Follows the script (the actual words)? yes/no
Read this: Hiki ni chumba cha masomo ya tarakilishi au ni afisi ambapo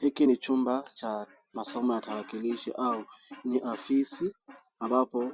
yes